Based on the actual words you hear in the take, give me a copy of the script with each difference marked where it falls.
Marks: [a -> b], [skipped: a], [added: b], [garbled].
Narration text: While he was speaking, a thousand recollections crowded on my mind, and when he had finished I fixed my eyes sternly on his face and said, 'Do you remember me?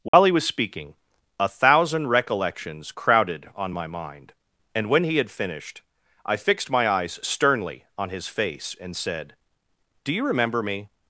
While he was speaking, a thousand recollections crowded on my mind, and when he had finished I fixed my eyes sternly on his face and said, 'Do you remember me?